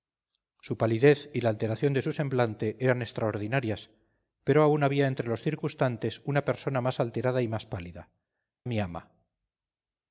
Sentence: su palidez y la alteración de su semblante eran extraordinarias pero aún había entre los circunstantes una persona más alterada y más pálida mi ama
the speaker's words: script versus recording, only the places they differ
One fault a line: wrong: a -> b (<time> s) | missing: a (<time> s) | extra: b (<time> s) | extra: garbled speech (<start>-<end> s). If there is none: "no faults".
no faults